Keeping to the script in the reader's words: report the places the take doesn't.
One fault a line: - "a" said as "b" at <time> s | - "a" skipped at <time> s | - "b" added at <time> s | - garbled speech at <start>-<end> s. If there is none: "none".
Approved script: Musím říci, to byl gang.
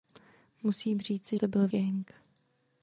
none